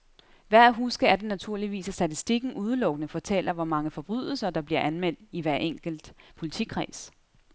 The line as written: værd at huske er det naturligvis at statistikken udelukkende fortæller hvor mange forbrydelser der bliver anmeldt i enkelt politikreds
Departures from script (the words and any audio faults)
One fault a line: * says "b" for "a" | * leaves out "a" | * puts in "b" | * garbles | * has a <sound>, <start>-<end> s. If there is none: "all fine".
* puts in "hver"